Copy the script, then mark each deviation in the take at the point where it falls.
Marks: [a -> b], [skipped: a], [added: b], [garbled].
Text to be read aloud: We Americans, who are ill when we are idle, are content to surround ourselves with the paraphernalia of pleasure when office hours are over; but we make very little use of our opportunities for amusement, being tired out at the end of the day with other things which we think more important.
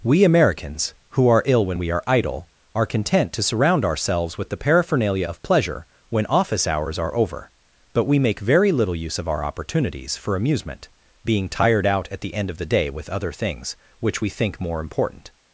We Americans, who are ill when we are idle, are content to surround ourselves with the paraphernalia of pleasure when office hours are over; but we make very little use of our opportunities for amusement, being tired out at the end of the day with other things which we think more important.